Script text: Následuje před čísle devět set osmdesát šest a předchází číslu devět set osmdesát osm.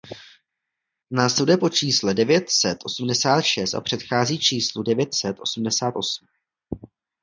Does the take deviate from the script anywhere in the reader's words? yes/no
yes